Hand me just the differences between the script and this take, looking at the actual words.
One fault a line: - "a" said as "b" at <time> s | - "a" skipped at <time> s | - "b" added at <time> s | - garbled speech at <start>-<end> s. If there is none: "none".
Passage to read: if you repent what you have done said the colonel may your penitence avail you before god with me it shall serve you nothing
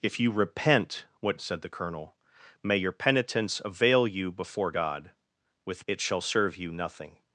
- "you have done" skipped at 1.4 s
- "me" skipped at 5.8 s